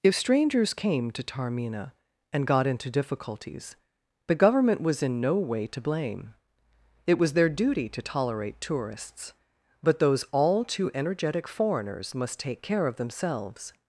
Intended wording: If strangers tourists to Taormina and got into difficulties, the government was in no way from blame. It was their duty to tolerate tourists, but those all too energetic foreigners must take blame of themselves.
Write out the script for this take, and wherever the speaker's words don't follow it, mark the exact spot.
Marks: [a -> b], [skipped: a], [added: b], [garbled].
If strangers [tourists -> came] to Taormina and got into difficulties, the government was in no way [from -> to] blame. It was their duty to tolerate tourists, but those all too energetic foreigners must take [blame -> care] of themselves.